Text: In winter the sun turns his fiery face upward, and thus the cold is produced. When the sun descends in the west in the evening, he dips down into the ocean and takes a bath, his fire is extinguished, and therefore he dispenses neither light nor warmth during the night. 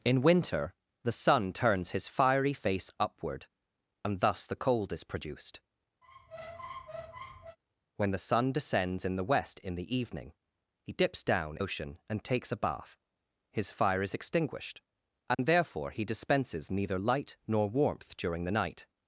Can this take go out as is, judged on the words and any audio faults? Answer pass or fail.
fail